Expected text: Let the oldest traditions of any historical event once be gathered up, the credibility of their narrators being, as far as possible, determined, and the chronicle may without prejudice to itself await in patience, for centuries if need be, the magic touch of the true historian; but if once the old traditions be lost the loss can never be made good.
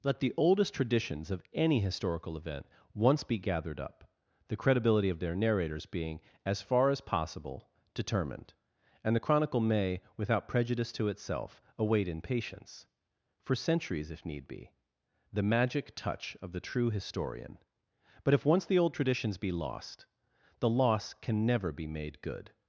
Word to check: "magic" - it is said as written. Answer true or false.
true